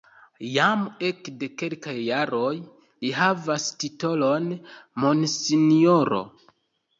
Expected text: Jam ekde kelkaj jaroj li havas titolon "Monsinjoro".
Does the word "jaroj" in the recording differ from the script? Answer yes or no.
no